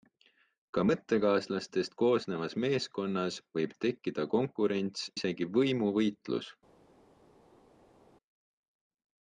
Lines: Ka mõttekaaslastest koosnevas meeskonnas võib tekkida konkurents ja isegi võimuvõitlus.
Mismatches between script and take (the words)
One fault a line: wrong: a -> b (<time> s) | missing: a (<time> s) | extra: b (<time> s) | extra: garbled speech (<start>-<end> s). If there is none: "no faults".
missing: ja (5.1 s)